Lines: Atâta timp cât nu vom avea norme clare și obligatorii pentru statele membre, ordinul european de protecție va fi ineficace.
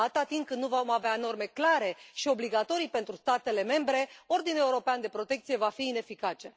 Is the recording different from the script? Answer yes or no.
no